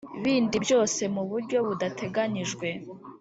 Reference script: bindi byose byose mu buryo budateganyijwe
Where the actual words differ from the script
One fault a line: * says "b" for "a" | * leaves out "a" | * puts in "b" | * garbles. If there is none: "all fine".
* leaves out "byose"